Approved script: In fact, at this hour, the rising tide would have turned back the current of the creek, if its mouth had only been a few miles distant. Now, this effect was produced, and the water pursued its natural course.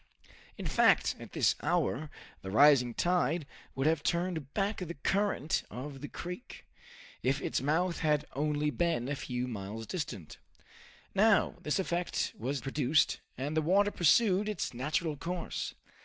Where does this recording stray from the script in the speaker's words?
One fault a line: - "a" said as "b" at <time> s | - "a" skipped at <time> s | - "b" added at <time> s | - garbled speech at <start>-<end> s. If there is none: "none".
none